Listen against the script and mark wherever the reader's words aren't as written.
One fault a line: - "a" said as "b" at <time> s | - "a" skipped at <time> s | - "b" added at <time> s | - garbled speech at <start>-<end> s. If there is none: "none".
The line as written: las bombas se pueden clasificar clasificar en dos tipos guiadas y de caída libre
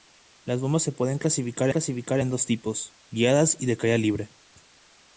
none